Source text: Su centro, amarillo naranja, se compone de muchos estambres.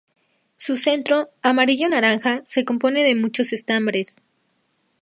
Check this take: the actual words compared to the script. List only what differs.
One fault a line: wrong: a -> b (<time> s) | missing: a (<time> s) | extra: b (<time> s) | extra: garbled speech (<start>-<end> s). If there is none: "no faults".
no faults